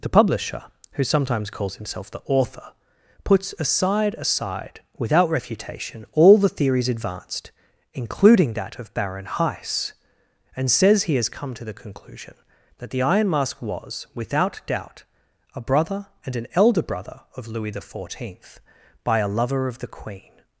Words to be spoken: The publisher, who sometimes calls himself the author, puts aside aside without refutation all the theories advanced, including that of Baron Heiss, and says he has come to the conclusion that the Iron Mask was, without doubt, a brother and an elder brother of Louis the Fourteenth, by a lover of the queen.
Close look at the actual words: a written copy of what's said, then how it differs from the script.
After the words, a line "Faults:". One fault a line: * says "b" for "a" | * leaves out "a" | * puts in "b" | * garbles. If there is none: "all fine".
The publisher, who sometimes calls himself the author, puts aside aside without refutation all the theories advanced, including that of Baron Heiss, and says he has come to the conclusion that the Iron Mask was, without doubt, a brother and an elder brother of Louis the Fourteenth, by a lover of the queen.
Faults:
all fine